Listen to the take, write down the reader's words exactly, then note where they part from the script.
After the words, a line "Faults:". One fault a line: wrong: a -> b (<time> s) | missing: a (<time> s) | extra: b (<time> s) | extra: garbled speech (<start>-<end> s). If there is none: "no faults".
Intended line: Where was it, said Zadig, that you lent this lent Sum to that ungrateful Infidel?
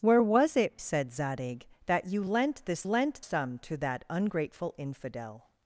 Where was it, said Zadig, that you lent this lent Sum to that ungrateful Infidel?
Faults:
no faults